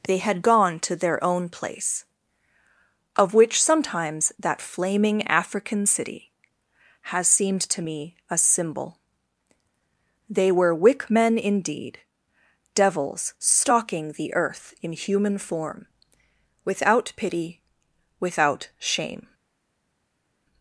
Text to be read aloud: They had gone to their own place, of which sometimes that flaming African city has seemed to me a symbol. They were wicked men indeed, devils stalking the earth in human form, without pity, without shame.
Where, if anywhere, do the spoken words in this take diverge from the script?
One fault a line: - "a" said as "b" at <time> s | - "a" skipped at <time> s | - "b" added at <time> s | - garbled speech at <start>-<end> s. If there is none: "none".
- "wicked" said as "wick" at 10.7 s